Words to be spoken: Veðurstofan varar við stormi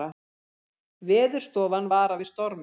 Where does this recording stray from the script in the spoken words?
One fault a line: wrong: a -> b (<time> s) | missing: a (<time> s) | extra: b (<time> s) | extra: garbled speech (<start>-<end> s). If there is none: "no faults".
no faults